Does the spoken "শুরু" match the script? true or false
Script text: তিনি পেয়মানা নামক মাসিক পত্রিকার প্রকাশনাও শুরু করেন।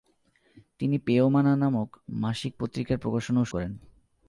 false